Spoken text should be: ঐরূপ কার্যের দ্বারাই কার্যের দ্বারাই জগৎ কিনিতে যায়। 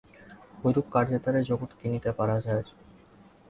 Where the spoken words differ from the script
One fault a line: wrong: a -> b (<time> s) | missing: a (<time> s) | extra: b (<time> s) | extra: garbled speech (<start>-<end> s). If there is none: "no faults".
missing: কার্যের দ্বারাই (1.4 s)
extra: পারা (2.2 s)